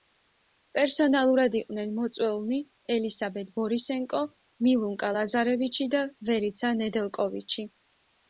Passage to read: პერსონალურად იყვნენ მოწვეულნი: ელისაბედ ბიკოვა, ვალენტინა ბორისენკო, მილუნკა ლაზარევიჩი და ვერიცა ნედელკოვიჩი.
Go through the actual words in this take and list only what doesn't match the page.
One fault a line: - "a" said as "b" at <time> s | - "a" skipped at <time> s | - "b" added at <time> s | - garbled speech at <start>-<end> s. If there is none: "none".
- "ბიკოვა ვალენტინა" skipped at 3.5 s